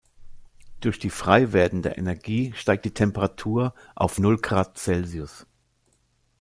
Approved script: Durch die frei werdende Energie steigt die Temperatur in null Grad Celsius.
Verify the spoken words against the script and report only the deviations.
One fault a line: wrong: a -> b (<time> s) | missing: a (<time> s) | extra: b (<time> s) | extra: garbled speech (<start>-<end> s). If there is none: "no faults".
wrong: in -> auf (3.9 s)